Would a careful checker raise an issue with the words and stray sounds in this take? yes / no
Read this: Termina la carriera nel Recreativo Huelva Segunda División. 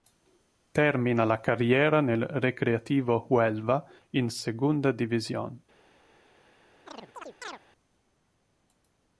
yes